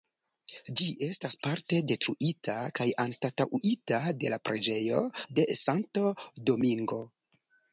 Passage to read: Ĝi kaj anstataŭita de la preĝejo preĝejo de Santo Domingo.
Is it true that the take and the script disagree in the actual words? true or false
true